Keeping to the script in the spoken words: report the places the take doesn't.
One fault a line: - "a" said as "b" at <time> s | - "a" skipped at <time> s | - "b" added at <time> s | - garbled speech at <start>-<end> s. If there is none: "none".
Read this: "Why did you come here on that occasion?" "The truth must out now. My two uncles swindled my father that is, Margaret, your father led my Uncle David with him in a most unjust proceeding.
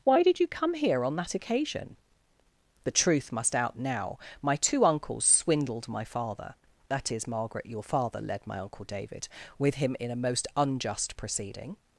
none